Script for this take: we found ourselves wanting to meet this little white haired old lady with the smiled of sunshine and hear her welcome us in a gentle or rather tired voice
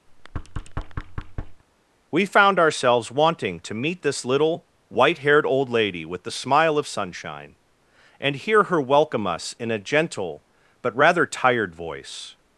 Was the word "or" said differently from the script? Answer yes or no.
yes